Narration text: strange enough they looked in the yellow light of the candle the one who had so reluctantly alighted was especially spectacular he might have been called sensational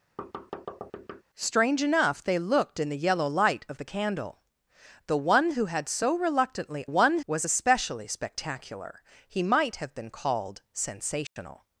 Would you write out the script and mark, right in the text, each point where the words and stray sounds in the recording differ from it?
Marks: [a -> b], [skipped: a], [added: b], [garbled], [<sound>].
[thud] strange enough they looked in the yellow light of the candle the one who had so reluctantly [alighted -> one] was especially spectacular he might have been called sensational [dropout]